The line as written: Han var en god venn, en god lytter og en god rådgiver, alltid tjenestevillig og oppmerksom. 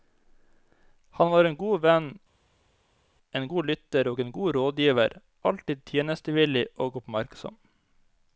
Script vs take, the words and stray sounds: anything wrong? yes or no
no